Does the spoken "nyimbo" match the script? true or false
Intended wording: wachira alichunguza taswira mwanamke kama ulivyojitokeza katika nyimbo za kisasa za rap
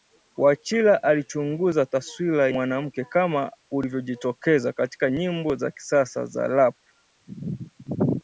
true